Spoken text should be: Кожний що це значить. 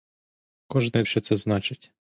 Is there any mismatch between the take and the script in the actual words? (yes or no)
no